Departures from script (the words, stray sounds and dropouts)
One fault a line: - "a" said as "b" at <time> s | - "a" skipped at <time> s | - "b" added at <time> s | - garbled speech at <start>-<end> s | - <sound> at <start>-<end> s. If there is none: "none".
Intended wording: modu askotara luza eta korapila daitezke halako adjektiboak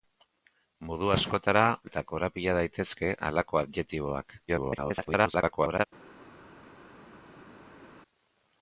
- "luza" skipped at 1.6 s
- garbled speech at 4.5-5.9 s